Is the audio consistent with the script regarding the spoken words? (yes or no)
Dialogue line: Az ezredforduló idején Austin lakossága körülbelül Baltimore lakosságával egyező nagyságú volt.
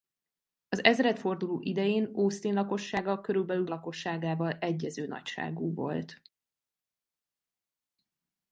no